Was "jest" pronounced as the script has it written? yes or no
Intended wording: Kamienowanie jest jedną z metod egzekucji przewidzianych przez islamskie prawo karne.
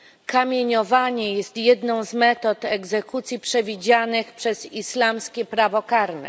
yes